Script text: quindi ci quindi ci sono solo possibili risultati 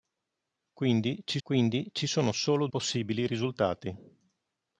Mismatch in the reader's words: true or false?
false